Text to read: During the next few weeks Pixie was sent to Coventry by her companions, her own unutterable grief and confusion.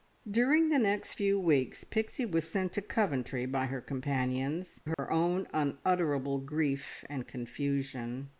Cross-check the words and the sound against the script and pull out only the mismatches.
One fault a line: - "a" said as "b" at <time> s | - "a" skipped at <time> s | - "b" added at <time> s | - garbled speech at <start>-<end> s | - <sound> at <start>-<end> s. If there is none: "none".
- dropout at 4.9-5.0 s